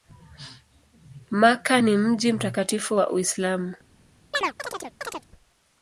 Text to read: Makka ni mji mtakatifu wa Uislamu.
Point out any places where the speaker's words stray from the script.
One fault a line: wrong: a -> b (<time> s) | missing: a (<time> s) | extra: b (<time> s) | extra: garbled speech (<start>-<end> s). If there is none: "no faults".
no faults